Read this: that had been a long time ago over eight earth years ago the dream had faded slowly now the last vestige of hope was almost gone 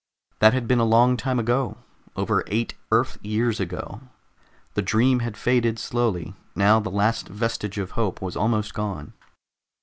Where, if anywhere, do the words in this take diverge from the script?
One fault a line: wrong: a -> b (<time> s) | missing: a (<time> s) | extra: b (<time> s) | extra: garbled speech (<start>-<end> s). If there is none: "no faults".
no faults